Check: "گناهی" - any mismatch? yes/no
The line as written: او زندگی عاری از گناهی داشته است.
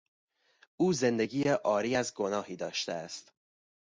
no